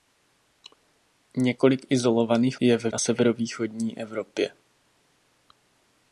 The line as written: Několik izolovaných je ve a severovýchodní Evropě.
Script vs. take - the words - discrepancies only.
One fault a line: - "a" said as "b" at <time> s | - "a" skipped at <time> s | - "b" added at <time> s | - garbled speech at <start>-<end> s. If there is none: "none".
none